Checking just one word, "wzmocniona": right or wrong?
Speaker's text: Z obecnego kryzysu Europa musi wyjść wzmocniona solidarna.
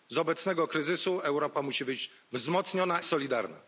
right